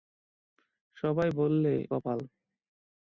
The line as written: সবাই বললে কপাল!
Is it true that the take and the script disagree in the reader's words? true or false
false